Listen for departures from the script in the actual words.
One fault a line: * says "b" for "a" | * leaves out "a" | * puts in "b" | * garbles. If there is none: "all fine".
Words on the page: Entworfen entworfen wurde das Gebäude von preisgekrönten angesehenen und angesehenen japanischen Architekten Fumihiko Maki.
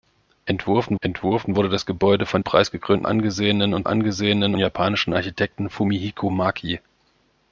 all fine